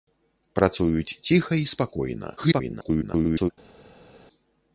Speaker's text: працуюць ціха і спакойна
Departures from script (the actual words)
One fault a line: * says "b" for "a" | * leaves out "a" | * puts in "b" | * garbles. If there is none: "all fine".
* garbles